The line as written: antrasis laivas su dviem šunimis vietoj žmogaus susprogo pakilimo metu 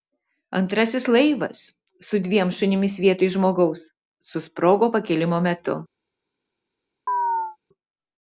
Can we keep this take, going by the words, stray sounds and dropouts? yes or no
no